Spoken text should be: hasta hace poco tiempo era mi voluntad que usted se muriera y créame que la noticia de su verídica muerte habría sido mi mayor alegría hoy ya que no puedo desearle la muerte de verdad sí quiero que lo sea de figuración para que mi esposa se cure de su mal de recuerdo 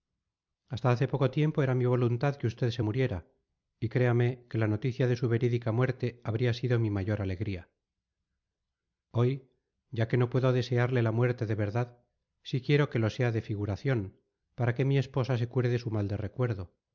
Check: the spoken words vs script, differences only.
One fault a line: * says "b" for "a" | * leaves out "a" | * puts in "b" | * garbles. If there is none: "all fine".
all fine